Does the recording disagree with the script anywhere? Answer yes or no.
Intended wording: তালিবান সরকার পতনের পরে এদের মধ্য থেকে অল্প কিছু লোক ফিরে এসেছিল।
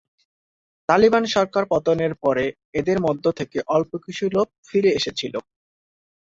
no